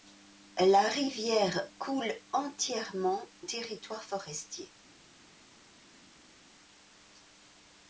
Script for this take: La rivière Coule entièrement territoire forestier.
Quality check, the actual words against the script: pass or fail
pass